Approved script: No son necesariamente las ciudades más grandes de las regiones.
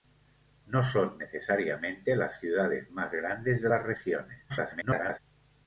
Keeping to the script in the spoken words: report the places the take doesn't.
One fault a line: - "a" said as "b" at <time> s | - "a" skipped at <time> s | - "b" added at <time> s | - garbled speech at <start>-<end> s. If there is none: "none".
- garbled speech at 4.5-5.2 s